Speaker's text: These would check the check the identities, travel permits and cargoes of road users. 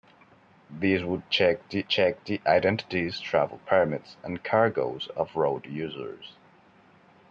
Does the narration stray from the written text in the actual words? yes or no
no